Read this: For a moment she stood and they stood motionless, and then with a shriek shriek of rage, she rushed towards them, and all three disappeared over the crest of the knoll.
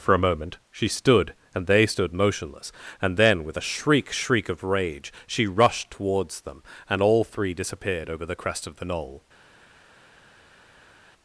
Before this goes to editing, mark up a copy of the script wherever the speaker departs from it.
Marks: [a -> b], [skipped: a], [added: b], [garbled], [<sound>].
For a moment she stood and they stood motionless, and then with a shriek shriek of rage, she rushed towards them, and all three disappeared over the crest of the knoll.